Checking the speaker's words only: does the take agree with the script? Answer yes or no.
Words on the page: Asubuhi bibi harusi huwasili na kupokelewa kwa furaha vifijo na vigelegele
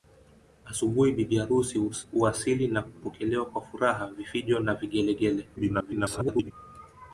no